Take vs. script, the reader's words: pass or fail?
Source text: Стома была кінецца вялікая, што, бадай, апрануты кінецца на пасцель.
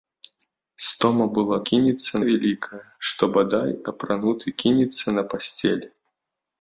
pass